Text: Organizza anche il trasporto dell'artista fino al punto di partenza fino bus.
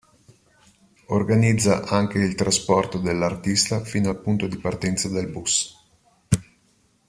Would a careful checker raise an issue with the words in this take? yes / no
yes